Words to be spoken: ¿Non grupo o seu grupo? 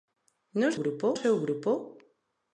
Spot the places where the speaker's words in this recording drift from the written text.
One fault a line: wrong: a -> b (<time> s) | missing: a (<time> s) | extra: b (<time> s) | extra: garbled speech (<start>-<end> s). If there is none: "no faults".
no faults